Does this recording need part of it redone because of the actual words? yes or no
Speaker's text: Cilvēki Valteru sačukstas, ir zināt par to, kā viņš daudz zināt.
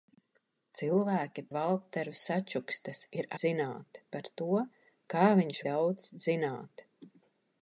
no